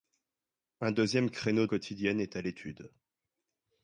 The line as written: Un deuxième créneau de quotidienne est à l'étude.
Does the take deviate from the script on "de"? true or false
true